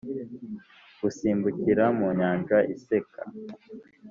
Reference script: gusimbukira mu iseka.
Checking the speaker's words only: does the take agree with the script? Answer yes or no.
no